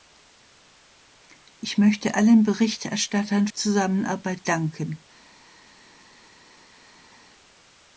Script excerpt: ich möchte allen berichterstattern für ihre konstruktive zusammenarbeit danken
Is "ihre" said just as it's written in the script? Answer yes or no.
no